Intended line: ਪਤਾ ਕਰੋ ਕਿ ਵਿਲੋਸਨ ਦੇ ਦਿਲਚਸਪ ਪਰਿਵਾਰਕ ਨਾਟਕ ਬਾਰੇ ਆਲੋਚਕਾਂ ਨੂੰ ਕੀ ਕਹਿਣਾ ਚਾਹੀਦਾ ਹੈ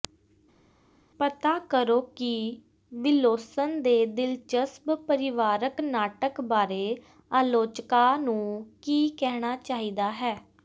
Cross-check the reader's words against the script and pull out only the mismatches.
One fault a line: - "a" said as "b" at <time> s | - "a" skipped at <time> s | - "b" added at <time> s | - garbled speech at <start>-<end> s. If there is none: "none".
none